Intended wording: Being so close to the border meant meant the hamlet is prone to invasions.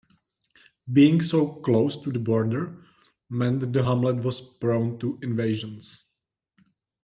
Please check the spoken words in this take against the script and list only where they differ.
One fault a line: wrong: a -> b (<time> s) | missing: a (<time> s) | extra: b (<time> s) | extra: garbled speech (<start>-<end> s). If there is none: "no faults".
missing: meant (3.7 s)
wrong: is -> was (4.2 s)